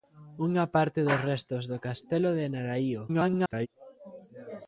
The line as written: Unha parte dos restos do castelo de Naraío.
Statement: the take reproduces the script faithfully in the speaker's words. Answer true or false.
false